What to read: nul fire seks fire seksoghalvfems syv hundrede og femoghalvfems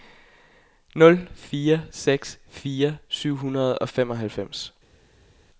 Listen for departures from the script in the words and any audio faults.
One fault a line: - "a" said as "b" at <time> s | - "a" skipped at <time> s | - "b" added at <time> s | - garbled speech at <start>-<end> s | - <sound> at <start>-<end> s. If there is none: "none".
- "seksoghalvfems" skipped at 3.0 s